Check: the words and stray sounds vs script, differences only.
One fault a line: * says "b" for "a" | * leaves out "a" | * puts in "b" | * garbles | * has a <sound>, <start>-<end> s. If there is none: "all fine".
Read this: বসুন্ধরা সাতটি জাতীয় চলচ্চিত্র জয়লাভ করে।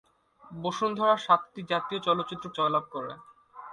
all fine